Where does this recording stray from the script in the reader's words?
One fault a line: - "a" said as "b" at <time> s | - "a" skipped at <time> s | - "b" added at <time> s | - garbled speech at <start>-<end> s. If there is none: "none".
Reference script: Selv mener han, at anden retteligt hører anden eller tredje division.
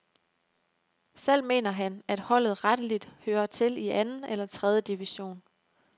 - "anden" said as "holdet" at 2.2 s
- "til i" added at 3.5 s